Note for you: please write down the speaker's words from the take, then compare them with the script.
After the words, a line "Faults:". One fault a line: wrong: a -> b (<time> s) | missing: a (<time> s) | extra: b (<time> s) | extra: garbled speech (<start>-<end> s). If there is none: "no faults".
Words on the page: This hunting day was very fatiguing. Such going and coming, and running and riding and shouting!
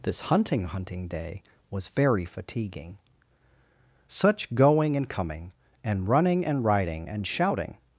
This hunting hunting day was very fatiguing. Such going and coming, and running and riding and shouting!
Faults:
extra: hunting (0.7 s)